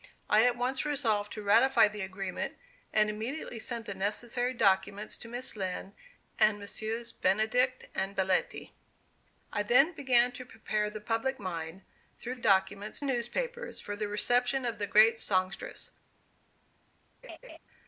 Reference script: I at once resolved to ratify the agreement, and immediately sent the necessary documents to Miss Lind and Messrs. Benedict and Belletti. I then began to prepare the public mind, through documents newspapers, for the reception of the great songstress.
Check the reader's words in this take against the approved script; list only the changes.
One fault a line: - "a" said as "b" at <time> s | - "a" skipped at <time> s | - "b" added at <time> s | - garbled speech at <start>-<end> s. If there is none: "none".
none